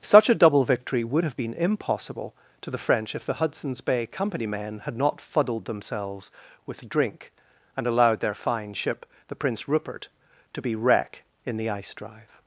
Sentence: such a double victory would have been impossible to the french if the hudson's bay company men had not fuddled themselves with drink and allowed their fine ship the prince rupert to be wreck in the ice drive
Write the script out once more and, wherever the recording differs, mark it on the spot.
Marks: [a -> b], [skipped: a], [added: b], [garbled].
such a double victory would have been impossible to the french if the hudson's bay company men had not fuddled themselves with drink and allowed their fine ship the prince rupert to be wreck in the ice drive